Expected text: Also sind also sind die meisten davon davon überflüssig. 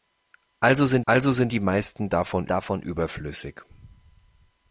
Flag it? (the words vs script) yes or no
no